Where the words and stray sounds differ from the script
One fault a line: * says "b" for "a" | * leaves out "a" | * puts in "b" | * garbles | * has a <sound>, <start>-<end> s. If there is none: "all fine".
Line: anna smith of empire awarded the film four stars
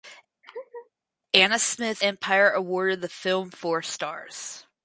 * has a laugh, 0.4-0.9 s
* leaves out "of"